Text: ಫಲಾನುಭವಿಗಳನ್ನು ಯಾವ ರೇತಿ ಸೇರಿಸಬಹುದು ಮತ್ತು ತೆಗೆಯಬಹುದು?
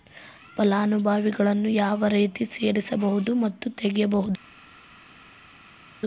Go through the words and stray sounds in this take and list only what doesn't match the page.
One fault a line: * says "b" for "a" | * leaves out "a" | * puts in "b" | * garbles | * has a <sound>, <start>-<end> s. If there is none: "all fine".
all fine